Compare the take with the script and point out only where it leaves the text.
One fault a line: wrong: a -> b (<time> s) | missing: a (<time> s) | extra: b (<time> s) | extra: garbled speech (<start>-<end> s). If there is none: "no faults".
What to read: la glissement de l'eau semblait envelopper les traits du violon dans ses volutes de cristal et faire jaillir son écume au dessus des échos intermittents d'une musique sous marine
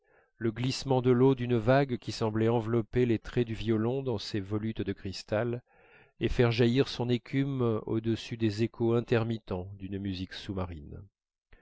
wrong: la -> le (0.3 s)
extra: d'une vague qui (1.4 s)